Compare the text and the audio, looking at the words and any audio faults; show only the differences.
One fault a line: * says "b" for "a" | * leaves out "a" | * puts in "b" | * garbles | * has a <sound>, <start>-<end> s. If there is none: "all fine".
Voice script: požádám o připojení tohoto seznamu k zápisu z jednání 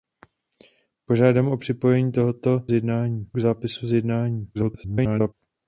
* says "jednání" for "seznamu"
* garbles